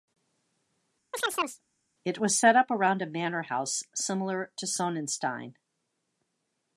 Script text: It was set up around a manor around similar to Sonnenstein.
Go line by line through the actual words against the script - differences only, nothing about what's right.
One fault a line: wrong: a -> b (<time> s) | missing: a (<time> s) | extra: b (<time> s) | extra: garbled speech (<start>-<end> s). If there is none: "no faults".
wrong: around -> house (3.4 s)